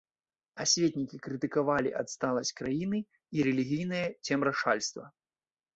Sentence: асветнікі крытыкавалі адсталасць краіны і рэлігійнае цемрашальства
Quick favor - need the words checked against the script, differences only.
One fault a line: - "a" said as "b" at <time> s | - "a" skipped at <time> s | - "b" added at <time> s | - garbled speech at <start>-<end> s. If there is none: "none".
none